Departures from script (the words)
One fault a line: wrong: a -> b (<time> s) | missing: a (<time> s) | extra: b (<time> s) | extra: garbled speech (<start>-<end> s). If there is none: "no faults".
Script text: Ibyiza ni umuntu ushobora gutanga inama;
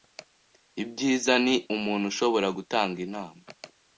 no faults